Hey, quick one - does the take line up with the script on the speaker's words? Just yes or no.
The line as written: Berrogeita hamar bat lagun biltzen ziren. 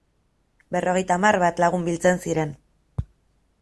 yes